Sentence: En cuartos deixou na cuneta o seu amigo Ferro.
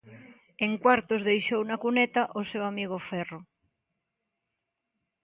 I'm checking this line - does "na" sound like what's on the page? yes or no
yes